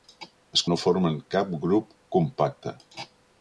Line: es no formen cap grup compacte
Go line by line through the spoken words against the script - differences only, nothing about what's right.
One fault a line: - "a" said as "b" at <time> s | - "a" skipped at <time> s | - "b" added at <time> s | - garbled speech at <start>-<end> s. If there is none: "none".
none